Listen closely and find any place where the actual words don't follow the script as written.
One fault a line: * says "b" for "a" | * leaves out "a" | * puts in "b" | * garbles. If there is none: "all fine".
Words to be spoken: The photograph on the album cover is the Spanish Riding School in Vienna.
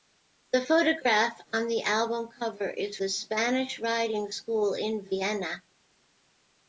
all fine